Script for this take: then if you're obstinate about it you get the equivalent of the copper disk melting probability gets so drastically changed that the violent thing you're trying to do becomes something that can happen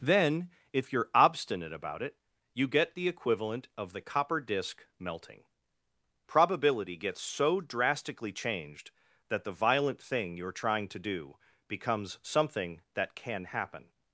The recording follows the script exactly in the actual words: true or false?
true